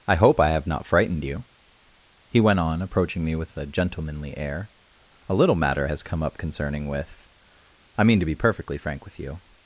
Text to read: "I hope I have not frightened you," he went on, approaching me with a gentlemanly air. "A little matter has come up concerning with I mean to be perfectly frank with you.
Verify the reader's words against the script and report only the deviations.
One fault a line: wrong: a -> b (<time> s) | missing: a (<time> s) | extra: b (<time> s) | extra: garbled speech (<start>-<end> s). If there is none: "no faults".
no faults